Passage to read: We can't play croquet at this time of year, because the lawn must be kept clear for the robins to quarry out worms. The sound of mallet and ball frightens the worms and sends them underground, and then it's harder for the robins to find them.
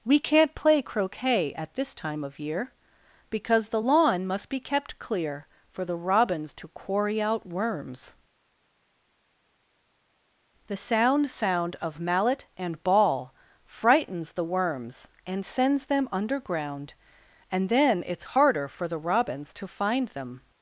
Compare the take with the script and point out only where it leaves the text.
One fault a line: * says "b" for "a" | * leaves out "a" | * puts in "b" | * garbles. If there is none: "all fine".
* puts in "sound"